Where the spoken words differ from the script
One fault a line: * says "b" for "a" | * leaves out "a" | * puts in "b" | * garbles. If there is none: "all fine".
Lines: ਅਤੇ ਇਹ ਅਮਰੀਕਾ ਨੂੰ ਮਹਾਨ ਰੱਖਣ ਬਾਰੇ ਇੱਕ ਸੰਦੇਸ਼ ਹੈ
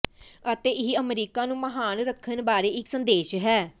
all fine